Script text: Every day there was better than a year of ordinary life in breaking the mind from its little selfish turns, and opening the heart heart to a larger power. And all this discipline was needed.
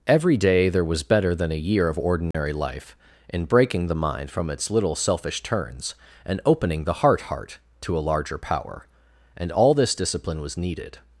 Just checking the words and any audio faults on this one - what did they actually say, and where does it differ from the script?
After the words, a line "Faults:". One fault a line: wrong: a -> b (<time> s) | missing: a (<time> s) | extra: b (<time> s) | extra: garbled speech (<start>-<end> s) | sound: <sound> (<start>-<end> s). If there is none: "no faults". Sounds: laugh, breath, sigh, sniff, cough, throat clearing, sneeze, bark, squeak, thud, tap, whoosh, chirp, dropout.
Every day there was better than a year of ordinary life in breaking the mind from its little selfish turns, and opening the heart heart to a larger power. And all this discipline was needed.
Faults:
sound: dropout (2.3-2.3 s)